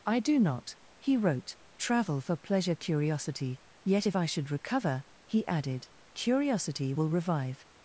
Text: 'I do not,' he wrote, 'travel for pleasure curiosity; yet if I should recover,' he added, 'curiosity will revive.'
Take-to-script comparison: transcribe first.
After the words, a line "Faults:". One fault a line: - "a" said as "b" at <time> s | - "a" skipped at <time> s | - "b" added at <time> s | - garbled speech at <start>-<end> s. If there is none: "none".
'I do not,' he wrote, 'travel for pleasure curiosity; yet if I should recover,' he added, 'curiosity will revive.'
Faults:
none